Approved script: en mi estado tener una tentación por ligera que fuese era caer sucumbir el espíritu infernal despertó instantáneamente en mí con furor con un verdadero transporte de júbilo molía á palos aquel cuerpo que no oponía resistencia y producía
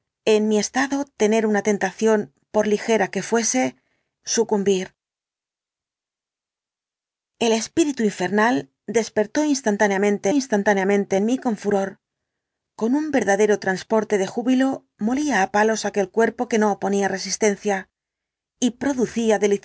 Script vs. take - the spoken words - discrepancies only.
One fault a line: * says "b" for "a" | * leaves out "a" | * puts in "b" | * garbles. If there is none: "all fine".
* leaves out "era caer"
* puts in "instantáneamente"